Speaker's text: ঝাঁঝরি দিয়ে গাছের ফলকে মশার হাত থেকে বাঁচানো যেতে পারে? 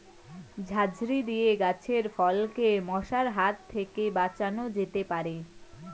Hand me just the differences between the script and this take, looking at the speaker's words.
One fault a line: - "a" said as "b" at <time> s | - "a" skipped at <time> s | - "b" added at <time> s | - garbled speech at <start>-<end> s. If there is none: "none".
none